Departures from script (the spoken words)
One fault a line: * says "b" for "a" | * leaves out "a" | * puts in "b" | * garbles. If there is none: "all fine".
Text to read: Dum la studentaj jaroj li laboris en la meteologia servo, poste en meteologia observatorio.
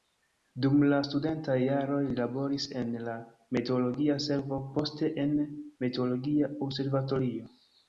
all fine